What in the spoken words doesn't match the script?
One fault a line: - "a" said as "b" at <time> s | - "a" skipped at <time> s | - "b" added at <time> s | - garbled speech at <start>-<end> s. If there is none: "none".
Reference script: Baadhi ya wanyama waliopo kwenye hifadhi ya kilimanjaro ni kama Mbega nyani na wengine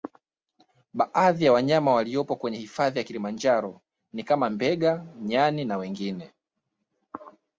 none